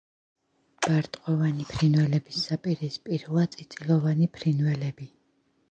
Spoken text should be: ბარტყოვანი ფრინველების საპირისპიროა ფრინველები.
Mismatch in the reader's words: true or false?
true